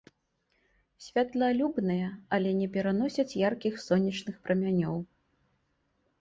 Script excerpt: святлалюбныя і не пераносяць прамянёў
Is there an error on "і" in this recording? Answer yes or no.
yes